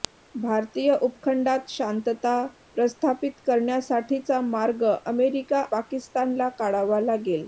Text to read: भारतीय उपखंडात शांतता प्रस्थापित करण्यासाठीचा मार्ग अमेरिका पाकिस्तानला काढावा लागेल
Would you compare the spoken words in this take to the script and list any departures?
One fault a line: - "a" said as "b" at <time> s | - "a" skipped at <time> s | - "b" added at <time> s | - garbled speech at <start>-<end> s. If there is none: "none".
none